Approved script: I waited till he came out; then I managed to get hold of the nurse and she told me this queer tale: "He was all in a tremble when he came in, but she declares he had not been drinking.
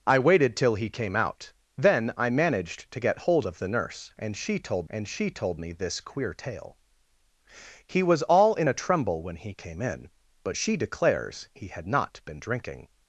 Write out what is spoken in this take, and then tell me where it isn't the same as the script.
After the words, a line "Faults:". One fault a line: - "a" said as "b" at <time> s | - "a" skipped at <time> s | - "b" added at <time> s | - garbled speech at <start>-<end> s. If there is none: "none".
I waited till he came out; then I managed to get hold of the nurse and she told and she told me this queer tale: "He was all in a tremble when he came in, but she declares he had not been drinking.
Faults:
- "and she told" added at 4.9 s